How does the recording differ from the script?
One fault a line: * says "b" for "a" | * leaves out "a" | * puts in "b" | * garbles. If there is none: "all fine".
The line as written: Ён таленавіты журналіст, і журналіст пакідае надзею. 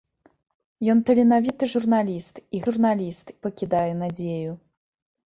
all fine